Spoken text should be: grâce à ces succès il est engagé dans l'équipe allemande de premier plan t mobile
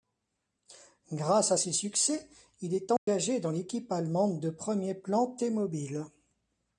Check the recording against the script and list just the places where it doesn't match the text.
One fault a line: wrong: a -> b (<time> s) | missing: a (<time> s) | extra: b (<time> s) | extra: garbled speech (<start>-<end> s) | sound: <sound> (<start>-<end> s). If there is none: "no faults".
sound: dropout (3.0-3.1 s)